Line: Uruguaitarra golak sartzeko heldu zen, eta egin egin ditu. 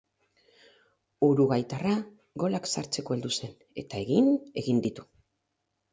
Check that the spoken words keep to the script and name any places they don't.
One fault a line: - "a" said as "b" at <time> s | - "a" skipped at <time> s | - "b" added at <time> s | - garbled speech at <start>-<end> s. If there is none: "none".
none